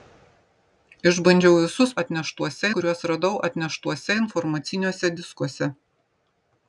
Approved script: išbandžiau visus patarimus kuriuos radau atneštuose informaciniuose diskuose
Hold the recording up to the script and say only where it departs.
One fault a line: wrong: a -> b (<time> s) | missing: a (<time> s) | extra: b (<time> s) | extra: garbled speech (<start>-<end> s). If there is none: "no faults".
wrong: patarimus -> atneštuose (2.0 s)